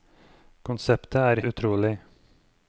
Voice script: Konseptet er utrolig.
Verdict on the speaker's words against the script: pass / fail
pass